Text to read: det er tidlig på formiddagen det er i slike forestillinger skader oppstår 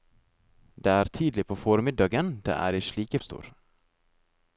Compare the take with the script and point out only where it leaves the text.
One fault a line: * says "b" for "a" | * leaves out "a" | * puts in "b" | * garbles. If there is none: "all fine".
* leaves out "forestillinger skader"